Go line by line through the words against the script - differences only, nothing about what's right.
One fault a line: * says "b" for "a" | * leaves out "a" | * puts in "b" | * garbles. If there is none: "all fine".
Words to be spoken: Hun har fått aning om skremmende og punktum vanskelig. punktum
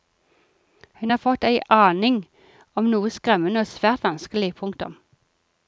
* puts in "ei"
* puts in "noe"
* says "svært" for "punktum"